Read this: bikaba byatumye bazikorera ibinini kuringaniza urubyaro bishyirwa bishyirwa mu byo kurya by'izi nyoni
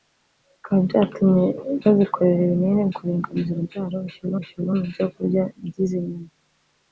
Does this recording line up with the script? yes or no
yes